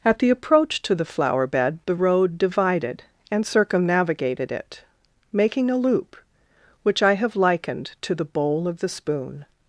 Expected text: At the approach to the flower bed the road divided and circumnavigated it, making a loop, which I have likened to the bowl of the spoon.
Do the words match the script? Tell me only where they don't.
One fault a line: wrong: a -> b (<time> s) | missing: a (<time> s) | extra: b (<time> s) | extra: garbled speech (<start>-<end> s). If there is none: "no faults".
no faults